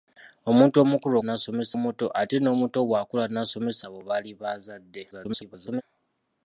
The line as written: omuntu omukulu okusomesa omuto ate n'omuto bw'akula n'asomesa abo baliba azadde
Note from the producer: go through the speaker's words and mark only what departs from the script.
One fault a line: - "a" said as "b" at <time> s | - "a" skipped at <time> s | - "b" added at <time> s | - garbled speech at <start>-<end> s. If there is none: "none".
- "okusomesa" said as "n'asomesa" at 1.2 s
- garbled speech at 5.1-5.8 s